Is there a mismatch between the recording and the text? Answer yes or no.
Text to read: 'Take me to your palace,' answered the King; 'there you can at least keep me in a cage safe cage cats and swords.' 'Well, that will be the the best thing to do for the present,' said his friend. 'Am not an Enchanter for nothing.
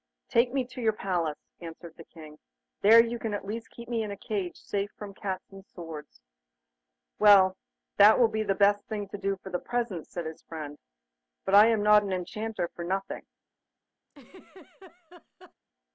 yes